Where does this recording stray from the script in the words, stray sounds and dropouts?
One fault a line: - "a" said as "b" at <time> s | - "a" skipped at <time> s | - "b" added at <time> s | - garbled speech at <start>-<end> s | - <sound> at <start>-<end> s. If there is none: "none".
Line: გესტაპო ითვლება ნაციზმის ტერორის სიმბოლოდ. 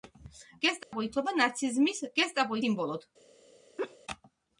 - dropout at 0.8-0.9 s
- "ტერორის" said as "გესტაპო" at 2.2 s
- laugh at 3.8-4.0 s